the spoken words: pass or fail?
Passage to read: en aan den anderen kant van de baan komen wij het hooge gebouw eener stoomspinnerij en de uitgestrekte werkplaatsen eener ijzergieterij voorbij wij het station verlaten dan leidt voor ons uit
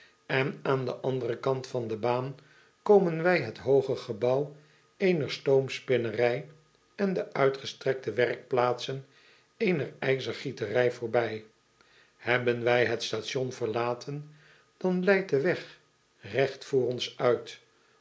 fail